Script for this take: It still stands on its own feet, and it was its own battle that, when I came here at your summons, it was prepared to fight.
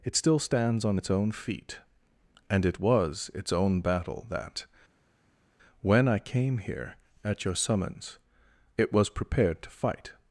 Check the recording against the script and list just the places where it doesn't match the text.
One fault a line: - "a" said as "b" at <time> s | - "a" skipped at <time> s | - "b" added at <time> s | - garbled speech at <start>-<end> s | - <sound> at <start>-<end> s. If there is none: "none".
none